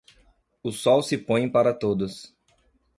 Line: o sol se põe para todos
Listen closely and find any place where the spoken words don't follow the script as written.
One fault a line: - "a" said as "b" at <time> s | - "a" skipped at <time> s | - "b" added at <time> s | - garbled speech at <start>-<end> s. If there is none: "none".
none